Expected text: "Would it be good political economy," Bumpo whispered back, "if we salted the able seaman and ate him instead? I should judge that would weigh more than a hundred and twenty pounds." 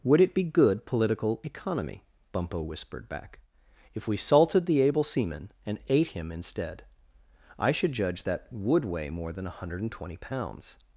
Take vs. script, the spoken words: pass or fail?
pass